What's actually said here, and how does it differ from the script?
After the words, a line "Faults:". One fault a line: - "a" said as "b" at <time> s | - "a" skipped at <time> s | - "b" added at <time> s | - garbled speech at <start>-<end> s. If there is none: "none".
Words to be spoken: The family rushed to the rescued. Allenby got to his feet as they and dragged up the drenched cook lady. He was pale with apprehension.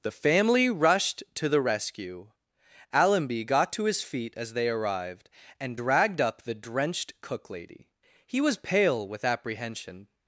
The family rushed to the rescue. Allenby got to his feet as they arrived, and dragged up the drenched cook lady. He was pale with apprehension.
Faults:
- "rescued" said as "rescue" at 1.6 s
- "arrived" added at 4.7 s